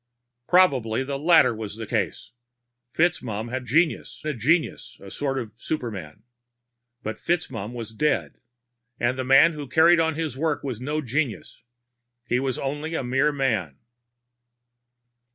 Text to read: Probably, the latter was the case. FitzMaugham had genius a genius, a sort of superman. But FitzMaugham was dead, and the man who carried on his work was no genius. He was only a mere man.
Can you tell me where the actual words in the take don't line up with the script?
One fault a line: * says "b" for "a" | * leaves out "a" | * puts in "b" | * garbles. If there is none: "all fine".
all fine